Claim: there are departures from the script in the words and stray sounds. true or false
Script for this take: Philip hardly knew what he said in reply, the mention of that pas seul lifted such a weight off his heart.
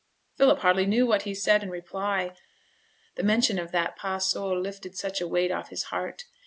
false